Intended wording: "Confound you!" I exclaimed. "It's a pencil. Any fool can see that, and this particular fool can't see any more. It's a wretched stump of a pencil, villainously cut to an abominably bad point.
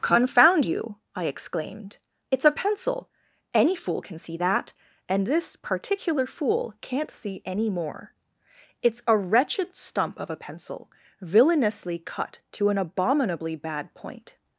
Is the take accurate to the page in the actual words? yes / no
yes